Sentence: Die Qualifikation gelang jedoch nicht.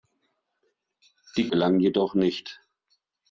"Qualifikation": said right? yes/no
no